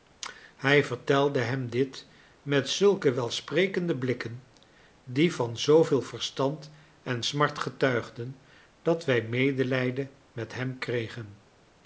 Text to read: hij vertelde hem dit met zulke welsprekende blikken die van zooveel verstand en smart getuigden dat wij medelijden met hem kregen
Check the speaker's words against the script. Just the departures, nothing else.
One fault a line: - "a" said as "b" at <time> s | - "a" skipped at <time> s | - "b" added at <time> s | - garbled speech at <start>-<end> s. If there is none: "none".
none